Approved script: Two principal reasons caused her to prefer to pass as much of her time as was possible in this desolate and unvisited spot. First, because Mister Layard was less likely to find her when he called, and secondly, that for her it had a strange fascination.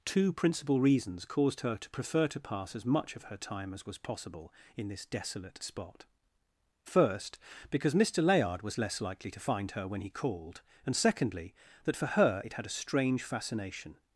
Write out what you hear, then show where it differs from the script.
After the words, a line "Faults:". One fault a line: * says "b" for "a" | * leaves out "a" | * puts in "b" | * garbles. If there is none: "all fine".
Two principal reasons caused her to prefer to pass as much of her time as was possible in this desolate spot. First, because Mister Layard was less likely to find her when he called, and secondly, that for her it had a strange fascination.
Faults:
* leaves out "and unvisited"